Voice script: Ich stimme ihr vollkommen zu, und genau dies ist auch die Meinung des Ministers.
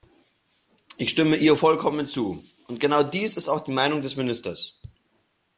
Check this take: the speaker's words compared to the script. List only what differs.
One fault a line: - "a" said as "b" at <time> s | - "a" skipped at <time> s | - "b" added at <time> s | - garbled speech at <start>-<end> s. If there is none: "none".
none